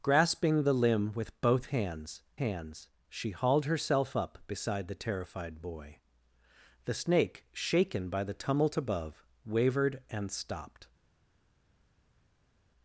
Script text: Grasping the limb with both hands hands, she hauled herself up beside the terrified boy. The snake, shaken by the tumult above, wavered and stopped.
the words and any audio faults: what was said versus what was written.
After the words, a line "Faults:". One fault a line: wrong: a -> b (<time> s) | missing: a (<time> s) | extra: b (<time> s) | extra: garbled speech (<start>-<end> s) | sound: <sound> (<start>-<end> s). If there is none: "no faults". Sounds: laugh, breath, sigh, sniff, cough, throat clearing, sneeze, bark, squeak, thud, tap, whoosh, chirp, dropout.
Grasping the limb with both hands hands, she hauled herself up beside the terrified boy. The snake, shaken by the tumult above, wavered and stopped.
Faults:
no faults